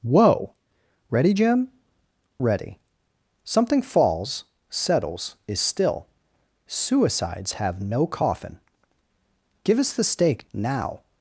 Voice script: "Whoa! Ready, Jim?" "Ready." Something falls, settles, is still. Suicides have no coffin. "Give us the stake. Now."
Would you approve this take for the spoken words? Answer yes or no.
yes